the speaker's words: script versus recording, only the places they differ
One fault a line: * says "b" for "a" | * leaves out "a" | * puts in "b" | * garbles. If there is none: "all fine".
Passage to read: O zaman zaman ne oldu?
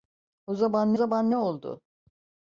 all fine